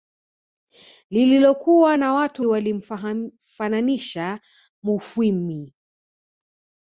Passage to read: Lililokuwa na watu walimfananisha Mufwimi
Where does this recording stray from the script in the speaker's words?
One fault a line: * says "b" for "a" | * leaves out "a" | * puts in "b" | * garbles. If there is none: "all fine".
all fine